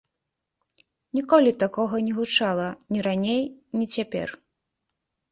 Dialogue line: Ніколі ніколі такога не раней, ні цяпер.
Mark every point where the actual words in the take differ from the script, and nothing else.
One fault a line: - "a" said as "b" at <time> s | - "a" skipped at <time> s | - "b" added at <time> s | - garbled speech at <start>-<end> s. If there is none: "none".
- "ніколі" skipped at 1.5 s
- "гучала ні" added at 2.2 s